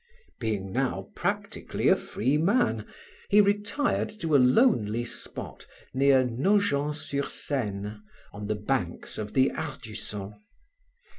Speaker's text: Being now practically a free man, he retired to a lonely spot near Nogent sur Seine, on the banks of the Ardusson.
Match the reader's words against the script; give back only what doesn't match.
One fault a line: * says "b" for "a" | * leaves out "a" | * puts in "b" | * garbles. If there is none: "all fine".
all fine